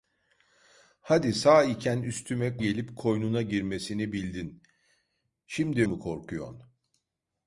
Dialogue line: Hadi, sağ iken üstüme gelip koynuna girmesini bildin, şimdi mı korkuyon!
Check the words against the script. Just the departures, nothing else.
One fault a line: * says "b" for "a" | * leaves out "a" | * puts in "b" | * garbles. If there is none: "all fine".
all fine